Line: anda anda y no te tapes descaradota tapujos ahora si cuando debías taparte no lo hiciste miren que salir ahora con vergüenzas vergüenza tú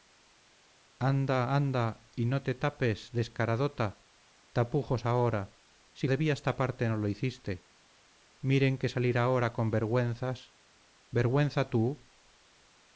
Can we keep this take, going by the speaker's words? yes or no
no